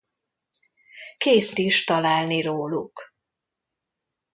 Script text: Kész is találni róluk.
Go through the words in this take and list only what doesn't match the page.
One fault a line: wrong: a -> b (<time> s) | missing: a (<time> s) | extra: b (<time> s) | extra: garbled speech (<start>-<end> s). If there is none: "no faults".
no faults